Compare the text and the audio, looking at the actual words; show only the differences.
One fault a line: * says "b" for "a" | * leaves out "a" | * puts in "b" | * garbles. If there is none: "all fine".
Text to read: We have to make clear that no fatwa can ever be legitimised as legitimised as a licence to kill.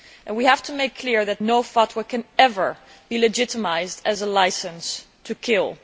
* leaves out "legitimised as"